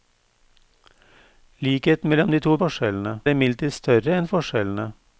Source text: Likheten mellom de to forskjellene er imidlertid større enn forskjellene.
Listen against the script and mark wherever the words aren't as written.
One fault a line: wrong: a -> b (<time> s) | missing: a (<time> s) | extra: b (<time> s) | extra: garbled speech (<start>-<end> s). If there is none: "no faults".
no faults